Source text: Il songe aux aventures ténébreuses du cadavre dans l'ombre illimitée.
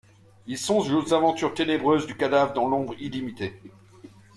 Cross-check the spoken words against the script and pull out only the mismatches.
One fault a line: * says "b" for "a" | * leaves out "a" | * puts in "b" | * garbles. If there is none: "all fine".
all fine